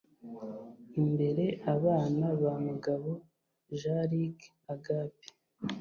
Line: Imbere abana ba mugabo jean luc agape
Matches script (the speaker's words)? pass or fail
pass